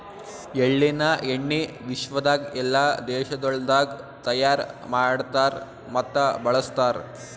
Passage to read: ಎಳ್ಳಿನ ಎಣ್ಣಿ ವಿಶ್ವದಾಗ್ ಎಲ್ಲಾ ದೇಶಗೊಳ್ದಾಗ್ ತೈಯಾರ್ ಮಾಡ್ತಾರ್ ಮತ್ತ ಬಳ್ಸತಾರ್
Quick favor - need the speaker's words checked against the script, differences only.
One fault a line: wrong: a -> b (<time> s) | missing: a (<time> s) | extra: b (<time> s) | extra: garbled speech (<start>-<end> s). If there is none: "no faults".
no faults